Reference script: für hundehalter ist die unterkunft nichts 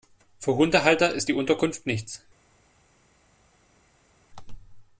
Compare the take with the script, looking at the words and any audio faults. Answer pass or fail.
pass